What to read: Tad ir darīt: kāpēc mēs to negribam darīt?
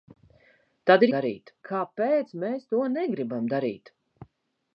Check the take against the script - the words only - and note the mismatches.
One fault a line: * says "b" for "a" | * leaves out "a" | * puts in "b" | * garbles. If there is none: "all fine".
all fine